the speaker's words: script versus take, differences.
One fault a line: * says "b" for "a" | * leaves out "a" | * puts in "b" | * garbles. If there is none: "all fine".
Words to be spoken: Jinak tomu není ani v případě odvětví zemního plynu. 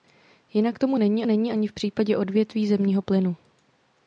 * puts in "není"